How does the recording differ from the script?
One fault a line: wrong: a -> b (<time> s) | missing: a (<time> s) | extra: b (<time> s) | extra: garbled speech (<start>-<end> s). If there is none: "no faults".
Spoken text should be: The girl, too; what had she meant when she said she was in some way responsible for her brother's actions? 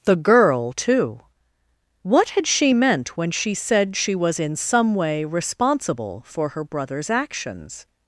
no faults